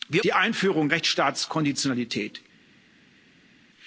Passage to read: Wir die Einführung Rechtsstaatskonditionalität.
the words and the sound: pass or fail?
pass